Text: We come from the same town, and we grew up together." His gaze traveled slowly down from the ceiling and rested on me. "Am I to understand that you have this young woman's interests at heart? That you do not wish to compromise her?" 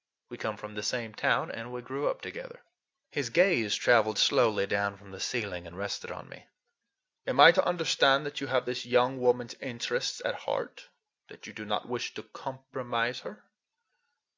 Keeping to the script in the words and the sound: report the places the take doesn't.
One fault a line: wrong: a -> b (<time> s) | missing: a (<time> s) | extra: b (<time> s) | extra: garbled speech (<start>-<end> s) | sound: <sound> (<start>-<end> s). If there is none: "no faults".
no faults